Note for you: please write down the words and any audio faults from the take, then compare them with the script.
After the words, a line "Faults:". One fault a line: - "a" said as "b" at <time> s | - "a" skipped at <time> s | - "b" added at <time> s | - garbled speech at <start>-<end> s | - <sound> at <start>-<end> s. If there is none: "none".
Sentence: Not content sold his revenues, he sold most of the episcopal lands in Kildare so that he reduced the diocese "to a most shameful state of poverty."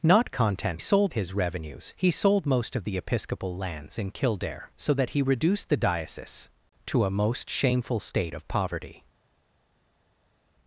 Not content sold his revenues, he sold most of the episcopal lands in Kildare so that he reduced the diocese "to a most shameful state of poverty."
Faults:
none